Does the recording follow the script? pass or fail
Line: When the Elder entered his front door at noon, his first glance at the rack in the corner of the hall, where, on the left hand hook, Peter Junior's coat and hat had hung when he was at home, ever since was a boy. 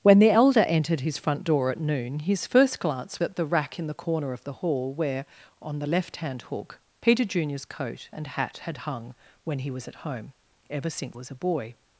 pass